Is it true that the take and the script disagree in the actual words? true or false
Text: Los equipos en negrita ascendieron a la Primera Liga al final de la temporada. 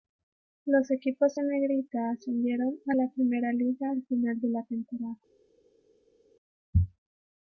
false